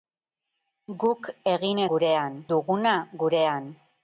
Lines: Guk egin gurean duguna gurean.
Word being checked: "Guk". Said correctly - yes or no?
yes